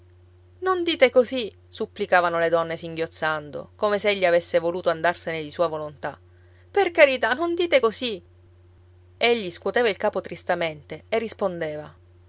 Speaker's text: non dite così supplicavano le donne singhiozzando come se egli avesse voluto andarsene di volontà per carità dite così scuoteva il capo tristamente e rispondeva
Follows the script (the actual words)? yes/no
no